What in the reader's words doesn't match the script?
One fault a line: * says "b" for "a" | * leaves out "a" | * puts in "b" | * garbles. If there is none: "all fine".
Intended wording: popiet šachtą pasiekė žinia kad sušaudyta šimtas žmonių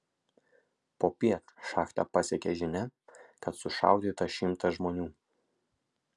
all fine